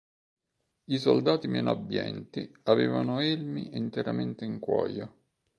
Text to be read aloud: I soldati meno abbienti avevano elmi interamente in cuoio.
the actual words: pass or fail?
pass